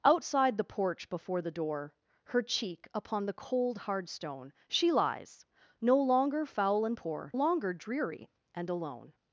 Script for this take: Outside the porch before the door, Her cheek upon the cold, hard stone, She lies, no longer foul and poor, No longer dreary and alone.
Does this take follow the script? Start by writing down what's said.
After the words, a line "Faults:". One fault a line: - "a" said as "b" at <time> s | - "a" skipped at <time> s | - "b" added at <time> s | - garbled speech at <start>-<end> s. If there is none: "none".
Outside the porch before the door, Her cheek upon the cold, hard stone, She lies, no longer foul and poor, Longer dreary and alone.
Faults:
- "No" skipped at 7.3 s